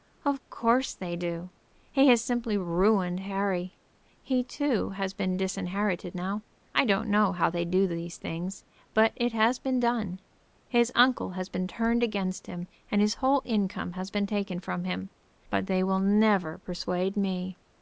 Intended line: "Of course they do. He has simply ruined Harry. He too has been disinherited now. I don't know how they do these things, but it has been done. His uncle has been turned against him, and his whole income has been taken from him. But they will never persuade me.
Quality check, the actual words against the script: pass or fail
pass